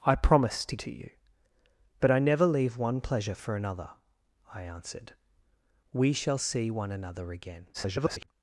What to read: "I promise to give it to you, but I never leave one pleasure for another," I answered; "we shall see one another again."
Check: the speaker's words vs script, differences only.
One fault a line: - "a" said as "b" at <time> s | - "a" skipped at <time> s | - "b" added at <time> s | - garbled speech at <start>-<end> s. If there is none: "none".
- "give it" skipped at 0.8 s
- garbled speech at 7.7-8.3 s